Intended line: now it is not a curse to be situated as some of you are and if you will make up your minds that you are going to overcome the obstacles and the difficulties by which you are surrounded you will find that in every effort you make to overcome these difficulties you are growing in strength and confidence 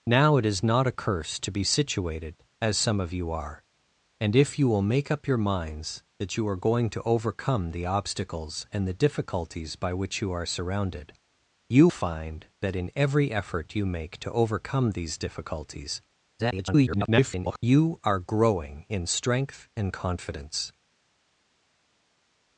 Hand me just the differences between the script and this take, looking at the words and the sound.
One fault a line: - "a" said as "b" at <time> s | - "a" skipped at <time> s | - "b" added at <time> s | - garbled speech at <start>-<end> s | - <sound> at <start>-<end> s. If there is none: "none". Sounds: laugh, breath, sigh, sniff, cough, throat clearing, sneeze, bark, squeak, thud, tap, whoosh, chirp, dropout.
- "will" skipped at 11.9 s
- garbled speech at 16.4-17.6 s